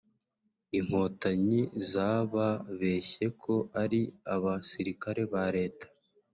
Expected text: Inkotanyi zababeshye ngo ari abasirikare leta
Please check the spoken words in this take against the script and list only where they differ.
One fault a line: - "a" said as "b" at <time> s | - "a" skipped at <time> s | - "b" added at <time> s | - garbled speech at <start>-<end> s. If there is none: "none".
- "ngo" said as "ko" at 3.4 s
- "ba" added at 5.3 s